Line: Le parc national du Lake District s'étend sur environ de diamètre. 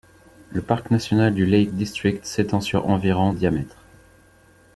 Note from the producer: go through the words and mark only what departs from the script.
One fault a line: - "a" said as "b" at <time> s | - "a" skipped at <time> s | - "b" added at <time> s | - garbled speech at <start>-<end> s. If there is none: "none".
- "de" skipped at 3.3 s